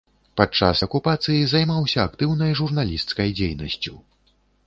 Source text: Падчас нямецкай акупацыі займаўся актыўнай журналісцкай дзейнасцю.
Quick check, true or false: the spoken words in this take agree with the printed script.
false